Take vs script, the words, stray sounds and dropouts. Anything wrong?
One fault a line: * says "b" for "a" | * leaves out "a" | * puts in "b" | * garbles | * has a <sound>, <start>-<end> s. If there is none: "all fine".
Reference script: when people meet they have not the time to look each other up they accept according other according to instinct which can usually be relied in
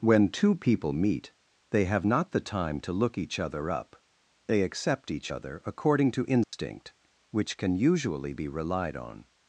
* puts in "two"
* says "each" for "according"
* has a dropout, 6.4-6.5 s
* says "on" for "in"